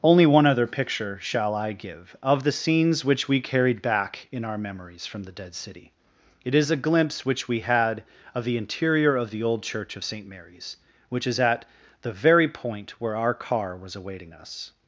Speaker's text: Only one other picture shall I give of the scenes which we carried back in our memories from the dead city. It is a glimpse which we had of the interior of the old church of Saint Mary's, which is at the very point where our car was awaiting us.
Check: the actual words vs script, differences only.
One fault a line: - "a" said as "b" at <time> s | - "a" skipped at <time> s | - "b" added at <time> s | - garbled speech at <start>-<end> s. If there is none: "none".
none